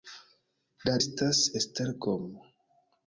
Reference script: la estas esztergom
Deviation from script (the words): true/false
false